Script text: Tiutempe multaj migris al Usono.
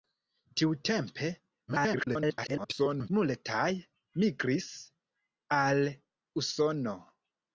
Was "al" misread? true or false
false